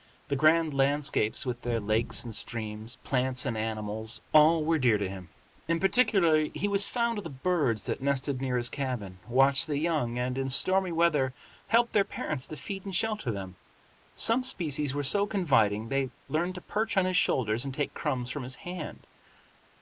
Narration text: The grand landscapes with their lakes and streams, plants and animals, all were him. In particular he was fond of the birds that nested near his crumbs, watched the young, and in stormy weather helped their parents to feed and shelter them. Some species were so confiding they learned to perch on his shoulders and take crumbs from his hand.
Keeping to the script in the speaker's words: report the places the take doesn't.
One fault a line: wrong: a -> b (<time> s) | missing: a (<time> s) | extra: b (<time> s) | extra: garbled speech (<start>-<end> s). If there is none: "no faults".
extra: dear to (4.8 s)
wrong: crumbs -> cabin (8.7 s)